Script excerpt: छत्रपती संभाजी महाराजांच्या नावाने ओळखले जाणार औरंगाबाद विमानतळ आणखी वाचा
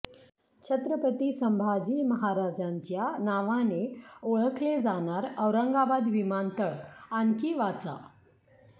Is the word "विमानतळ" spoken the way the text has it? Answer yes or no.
yes